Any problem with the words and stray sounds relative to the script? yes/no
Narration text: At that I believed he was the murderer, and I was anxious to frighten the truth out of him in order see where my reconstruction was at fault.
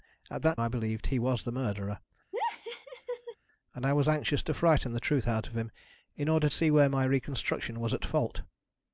yes